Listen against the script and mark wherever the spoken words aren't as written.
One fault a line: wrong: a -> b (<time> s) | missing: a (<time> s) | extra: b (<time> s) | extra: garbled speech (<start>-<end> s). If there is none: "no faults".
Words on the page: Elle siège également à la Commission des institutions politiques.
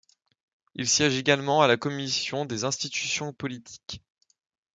wrong: Elle -> Il (0.7 s)